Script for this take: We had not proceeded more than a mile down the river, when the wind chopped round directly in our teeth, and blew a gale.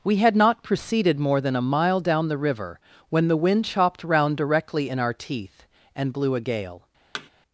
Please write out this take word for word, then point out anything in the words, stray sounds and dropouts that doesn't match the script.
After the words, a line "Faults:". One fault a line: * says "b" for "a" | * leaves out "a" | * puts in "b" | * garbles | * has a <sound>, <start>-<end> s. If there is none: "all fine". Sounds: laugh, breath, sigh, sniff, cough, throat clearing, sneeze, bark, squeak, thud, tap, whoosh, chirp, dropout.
We had not proceeded more than a mile down the river, when the wind chopped round directly in our teeth, and blew a gale.
Faults:
* has a thud, 7.1-7.3 s